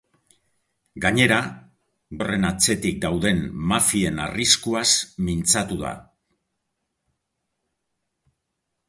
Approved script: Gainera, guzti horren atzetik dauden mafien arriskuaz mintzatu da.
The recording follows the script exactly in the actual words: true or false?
false